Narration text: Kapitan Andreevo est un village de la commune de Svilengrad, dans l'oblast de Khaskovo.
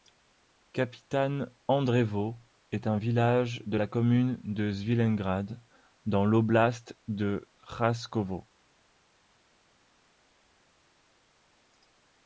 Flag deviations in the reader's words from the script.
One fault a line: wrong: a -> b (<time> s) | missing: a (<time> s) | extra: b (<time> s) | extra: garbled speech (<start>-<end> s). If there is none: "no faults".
no faults